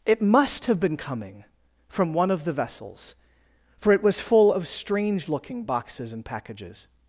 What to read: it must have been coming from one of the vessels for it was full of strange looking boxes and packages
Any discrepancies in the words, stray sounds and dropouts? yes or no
no